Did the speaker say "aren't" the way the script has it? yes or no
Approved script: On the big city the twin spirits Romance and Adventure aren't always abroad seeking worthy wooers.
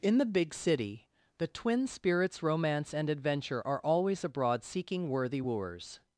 no